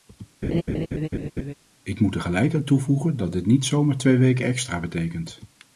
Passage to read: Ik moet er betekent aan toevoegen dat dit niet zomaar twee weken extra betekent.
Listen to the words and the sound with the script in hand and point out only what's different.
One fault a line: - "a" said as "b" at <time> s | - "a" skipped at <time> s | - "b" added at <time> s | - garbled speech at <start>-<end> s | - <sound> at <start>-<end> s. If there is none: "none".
- laugh at 0.4-1.5 s
- "betekent" said as "gelijk" at 2.2 s